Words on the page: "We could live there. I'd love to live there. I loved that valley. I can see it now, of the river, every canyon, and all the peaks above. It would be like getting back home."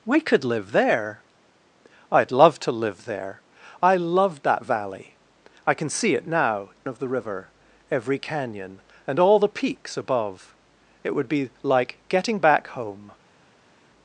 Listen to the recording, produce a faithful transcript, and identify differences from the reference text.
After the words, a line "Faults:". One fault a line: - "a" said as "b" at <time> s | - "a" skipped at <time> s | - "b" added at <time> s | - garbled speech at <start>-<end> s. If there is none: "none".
"We could live there. I'd love to live there. I loved that valley. I can see it now, of the river, every canyon, and all the peaks above. It would be like getting back home."
Faults:
none